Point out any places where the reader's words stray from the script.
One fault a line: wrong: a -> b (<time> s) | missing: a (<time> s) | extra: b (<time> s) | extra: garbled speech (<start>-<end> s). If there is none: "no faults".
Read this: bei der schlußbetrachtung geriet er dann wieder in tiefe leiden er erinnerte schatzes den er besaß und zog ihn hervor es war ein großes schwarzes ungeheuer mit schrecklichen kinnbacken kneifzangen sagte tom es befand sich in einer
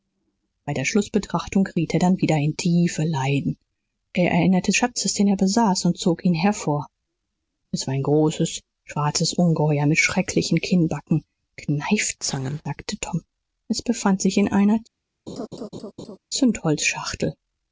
no faults